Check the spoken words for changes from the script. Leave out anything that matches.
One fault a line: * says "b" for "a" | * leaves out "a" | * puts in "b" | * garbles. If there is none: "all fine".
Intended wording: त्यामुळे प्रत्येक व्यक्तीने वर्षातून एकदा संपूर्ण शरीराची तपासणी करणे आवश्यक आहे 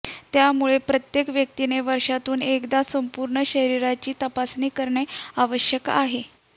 all fine